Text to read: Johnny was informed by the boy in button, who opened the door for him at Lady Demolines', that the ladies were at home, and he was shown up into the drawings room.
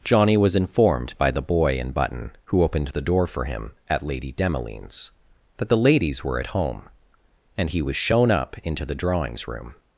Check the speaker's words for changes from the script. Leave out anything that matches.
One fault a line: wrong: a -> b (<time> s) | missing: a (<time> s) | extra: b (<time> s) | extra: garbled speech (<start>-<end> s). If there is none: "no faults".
no faults